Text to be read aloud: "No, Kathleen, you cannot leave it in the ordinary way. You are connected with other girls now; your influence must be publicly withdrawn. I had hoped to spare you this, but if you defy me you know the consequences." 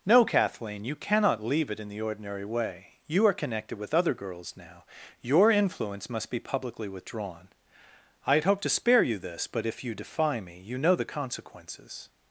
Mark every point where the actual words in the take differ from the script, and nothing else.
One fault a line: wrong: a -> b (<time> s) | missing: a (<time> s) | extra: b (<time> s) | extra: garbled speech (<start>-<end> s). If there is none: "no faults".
no faults